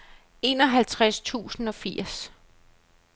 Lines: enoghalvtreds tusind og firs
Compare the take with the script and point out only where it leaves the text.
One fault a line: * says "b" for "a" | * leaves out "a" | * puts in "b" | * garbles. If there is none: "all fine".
all fine